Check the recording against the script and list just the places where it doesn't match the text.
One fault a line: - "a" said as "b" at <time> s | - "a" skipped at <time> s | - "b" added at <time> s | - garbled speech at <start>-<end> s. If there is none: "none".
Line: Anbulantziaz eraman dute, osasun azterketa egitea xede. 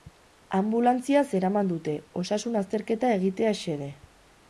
none